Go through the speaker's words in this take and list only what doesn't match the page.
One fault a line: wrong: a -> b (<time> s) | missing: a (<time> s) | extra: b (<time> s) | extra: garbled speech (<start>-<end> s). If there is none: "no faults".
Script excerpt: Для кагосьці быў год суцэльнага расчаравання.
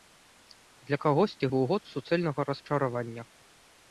no faults